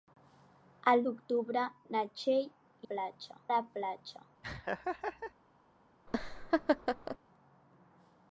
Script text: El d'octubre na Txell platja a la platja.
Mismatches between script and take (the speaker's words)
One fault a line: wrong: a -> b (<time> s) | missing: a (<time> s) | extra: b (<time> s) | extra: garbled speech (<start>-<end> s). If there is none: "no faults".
no faults